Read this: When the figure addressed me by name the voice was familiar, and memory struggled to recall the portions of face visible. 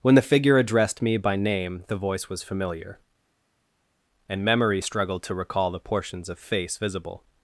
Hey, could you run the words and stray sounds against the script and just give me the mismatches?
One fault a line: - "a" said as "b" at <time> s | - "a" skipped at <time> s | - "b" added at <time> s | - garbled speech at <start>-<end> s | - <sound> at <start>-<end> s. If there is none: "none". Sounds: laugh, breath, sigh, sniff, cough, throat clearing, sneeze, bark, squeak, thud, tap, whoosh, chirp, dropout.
none